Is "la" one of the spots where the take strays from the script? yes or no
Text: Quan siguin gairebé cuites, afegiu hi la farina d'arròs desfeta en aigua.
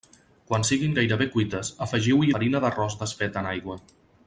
yes